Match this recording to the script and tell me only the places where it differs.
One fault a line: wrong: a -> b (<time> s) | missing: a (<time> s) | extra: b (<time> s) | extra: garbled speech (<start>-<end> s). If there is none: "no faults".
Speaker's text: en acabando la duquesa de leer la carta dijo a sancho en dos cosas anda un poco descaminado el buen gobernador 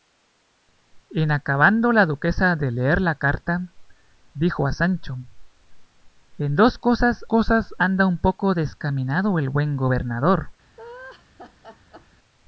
extra: cosas (7.3 s)